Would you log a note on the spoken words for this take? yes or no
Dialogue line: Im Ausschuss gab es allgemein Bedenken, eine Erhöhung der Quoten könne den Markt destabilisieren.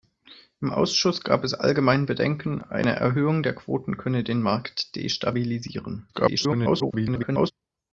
yes